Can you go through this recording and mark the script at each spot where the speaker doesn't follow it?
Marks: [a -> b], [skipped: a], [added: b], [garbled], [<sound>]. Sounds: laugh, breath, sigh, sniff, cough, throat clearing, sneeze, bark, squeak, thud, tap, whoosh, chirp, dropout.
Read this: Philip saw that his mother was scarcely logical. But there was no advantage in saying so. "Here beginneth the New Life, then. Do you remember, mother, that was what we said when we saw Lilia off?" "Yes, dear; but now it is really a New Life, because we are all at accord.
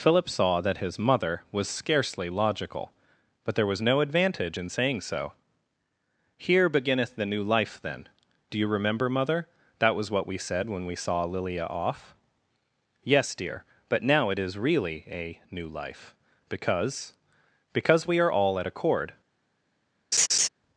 Philip saw that his mother was scarcely logical. But there was no advantage in saying so. "Here beginneth the New Life, then. Do you remember, mother, that was what we said when we saw Lilia off?" "Yes, dear; but now it is really a New Life, because [added: because] we are all at accord. [laugh]